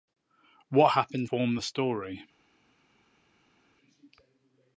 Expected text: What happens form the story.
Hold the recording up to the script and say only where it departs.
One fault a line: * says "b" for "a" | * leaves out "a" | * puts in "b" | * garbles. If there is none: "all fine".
all fine